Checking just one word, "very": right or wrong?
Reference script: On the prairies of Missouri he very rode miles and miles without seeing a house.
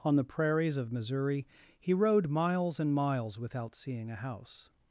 wrong